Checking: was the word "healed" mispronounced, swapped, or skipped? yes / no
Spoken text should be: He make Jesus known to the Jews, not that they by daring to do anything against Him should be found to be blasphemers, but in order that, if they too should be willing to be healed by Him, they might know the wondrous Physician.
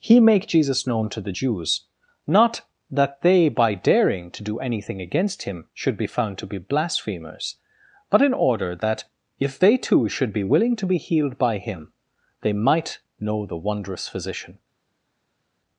no